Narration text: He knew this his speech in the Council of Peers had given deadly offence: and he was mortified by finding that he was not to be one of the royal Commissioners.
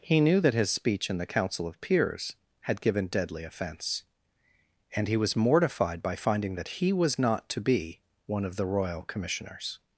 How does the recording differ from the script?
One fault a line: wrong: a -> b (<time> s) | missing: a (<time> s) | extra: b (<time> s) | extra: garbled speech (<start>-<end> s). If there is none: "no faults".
wrong: this -> that (0.4 s)